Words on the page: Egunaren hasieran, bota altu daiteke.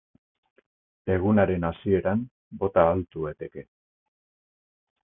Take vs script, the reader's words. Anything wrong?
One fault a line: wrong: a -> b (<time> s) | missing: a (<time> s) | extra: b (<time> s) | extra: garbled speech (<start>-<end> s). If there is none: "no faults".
no faults